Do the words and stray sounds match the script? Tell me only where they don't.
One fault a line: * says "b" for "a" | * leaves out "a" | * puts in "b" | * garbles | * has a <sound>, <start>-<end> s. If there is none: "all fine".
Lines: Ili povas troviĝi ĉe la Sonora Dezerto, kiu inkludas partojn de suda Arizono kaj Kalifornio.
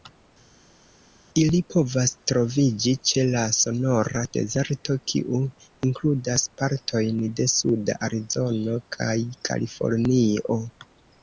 all fine